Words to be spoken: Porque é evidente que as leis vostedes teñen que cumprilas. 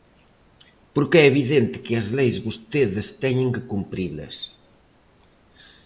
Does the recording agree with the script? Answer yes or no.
yes